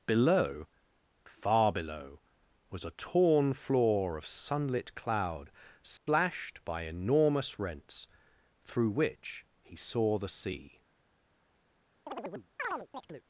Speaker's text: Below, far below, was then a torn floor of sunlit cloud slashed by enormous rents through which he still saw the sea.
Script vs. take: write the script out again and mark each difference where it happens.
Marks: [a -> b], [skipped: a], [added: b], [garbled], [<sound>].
Below, far below, was [skipped: then] a torn floor of sunlit cloud slashed [dropout] by enormous rents through which he [skipped: still] saw the sea. [chirp]